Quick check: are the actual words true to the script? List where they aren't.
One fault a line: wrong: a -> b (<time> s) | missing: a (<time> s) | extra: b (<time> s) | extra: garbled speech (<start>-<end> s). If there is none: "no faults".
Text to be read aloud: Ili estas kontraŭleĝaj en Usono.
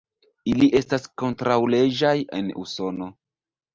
no faults